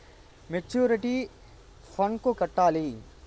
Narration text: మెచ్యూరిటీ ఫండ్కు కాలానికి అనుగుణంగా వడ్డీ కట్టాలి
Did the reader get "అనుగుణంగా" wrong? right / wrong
wrong